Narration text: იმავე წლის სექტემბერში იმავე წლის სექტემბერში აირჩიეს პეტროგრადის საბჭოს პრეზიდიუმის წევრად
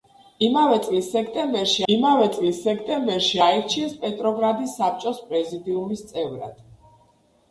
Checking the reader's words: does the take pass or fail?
pass